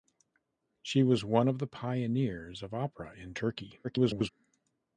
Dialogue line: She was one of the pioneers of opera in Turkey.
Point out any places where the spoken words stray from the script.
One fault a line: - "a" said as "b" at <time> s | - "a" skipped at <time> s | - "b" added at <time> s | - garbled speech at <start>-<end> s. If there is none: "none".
- garbled speech at 3.8-4.3 s